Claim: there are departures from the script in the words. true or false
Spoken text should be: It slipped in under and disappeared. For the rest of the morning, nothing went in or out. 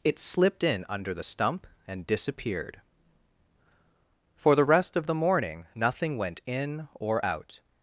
true